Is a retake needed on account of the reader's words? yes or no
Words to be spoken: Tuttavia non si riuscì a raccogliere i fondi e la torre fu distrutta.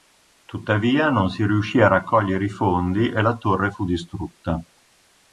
no